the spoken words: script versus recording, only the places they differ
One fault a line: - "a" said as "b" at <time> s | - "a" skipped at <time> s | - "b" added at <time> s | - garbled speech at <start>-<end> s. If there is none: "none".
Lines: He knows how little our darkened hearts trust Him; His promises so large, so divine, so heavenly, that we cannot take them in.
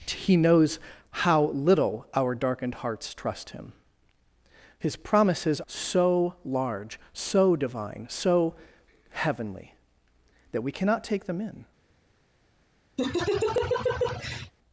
none